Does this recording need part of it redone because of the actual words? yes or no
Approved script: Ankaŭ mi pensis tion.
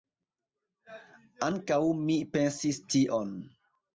no